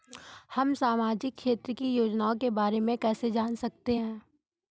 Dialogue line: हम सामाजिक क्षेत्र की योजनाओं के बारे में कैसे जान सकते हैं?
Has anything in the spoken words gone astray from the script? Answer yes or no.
no